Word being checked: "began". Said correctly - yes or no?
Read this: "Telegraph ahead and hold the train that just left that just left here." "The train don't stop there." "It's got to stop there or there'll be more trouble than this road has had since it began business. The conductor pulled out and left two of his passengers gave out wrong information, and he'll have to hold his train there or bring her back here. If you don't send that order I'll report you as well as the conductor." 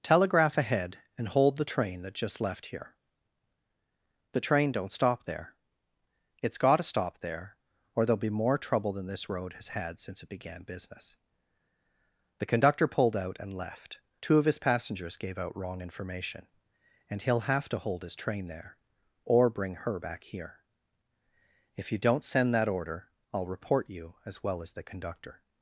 yes